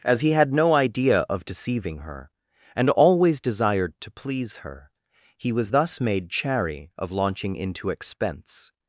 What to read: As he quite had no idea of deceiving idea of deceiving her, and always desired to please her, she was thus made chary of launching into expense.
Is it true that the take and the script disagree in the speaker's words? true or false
true